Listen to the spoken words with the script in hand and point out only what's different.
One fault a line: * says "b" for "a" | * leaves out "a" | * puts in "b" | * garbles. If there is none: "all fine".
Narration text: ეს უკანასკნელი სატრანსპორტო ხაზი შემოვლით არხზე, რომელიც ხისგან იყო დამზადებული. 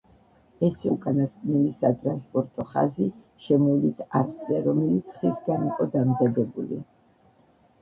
all fine